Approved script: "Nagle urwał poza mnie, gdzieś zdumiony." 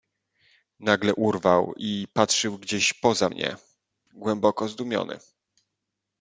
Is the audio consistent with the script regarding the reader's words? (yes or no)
no